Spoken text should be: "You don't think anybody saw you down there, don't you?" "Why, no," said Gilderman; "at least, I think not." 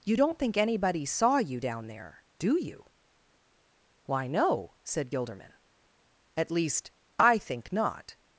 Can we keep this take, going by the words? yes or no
no